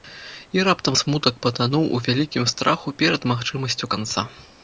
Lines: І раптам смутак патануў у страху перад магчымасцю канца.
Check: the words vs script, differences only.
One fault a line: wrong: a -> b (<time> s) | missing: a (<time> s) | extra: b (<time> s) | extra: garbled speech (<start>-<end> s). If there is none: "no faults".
extra: вялікім (2.1 s)